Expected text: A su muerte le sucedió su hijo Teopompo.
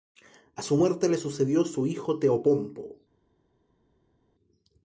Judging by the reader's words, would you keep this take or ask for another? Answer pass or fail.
pass